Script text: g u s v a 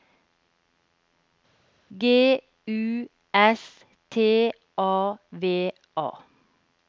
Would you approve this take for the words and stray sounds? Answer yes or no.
no